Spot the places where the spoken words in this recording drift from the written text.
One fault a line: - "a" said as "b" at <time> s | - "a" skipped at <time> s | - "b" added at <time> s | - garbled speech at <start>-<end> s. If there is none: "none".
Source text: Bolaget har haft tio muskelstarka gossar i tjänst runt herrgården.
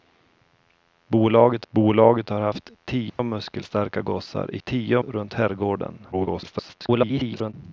- "bolaget" added at 1.7 s
- "tjänst" said as "tio" at 4.6 s
- garbled speech at 6.1-7.5 s